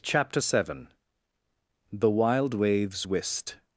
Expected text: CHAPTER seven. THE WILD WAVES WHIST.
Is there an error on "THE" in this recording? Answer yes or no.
no